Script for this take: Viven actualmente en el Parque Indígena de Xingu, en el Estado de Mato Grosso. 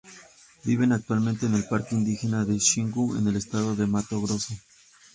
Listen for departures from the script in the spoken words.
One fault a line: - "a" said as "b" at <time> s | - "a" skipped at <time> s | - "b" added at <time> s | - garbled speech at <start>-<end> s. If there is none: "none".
none